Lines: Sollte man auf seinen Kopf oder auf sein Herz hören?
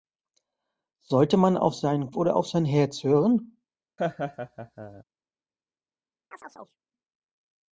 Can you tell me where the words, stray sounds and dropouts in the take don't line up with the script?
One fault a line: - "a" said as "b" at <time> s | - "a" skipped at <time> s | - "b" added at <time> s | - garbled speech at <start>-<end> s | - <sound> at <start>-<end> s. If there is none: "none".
- "Kopf" skipped at 2.1 s
- laugh at 4.0-5.0 s
- chirp at 6.3-6.8 s